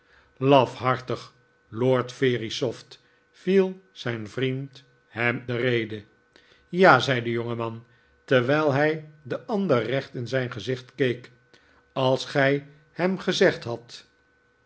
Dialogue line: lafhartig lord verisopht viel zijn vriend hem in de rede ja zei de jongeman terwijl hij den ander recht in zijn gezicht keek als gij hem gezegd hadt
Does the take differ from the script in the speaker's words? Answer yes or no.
yes